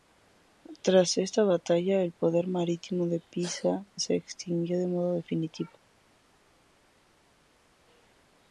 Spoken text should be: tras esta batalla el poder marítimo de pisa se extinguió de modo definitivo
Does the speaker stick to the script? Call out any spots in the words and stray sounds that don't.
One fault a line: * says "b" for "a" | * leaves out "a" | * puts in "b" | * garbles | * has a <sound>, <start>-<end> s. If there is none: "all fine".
all fine